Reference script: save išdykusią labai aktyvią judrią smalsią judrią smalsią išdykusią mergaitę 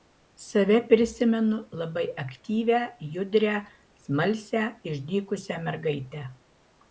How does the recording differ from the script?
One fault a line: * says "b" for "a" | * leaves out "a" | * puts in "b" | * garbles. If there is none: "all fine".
* says "prisimenu" for "išdykusią"
* leaves out "judrią smalsią"